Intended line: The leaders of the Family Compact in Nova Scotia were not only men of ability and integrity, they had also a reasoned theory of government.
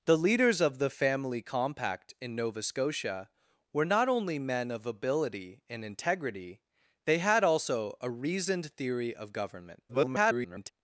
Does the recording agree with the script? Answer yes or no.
no